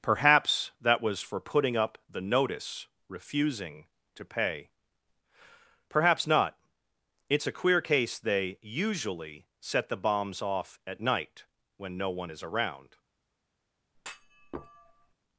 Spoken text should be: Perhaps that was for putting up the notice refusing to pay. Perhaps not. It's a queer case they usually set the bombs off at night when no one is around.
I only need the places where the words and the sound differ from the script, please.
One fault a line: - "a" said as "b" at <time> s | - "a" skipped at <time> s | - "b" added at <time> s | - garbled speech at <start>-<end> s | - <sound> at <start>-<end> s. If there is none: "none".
- thud at 13.9-15.1 s